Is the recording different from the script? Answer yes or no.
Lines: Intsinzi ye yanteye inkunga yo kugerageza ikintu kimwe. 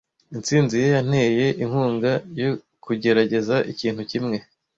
no